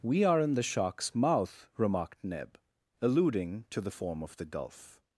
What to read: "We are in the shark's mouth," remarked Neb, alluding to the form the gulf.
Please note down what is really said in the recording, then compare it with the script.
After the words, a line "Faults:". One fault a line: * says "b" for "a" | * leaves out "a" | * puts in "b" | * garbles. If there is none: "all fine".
"We are in the shark's mouth," remarked Neb, alluding to the form of the gulf.
Faults:
* puts in "of"